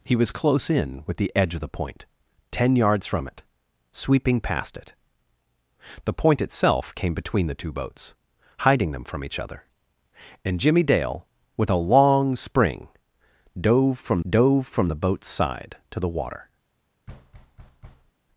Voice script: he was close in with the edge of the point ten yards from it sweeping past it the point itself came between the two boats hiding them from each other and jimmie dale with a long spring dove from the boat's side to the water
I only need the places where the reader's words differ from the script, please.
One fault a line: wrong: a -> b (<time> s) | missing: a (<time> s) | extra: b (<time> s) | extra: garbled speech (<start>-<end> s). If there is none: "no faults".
extra: dove from (14.3 s)